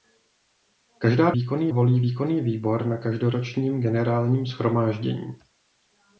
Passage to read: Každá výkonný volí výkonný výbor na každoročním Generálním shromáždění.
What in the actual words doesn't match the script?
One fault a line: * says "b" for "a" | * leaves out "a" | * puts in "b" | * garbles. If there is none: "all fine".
all fine